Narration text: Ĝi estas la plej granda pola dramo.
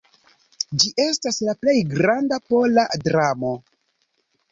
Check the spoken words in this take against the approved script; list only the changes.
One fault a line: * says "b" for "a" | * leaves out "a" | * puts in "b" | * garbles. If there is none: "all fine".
all fine